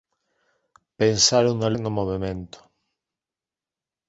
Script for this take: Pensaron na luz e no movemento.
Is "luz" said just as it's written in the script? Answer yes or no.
no